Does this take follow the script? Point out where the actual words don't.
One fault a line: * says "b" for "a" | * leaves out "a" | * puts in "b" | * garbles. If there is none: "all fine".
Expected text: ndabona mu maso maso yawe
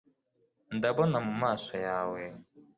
* leaves out "maso"